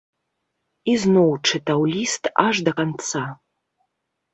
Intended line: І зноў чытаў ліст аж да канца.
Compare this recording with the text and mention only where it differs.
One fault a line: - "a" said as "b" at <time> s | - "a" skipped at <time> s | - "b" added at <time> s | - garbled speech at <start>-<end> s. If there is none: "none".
none